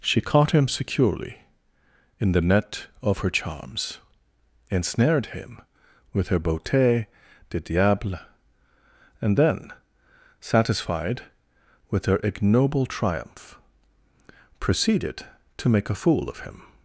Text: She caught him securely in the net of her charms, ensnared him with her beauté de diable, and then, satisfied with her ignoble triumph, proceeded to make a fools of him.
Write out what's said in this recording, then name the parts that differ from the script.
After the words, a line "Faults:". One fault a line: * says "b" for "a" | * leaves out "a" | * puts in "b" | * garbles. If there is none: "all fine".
She caught him securely in the net of her charms, ensnared him with her beauté de diable, and then, satisfied with her ignoble triumph, proceeded to make a fool of him.
Faults:
* says "fool" for "fools"